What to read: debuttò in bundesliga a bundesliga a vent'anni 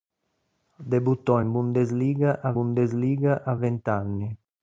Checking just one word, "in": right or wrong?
right